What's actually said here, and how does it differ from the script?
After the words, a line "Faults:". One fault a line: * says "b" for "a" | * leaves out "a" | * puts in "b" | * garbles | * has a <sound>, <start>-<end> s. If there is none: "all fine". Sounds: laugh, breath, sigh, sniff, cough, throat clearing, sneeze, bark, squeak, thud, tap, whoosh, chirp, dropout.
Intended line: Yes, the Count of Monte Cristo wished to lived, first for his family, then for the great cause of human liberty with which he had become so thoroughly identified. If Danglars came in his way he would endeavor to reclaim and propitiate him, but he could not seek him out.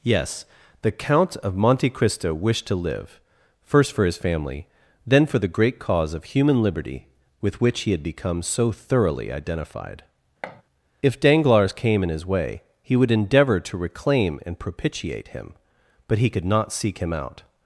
Yes, the Count of Monte Cristo wished to live, first for his family, then for the great cause of human liberty with which he had become so thoroughly identified. If Danglars came in his way he would endeavor to reclaim and propitiate him, but he could not seek him out.
Faults:
* says "live" for "lived"
* has a thud, 10.4-10.6 s